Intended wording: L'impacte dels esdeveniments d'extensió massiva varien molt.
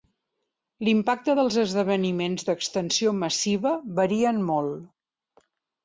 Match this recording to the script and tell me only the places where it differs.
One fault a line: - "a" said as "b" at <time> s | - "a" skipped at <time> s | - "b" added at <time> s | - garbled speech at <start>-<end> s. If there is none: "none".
none